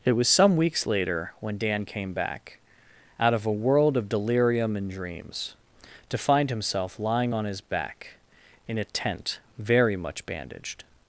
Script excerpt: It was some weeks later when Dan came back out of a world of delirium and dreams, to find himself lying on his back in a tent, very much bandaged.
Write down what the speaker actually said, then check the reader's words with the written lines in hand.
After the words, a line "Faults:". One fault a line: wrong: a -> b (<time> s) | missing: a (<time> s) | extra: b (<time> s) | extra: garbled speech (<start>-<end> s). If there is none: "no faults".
It was some weeks later when Dan came back out of a world of delirium and dreams, to find himself lying on his back in a tent, very much bandaged.
Faults:
no faults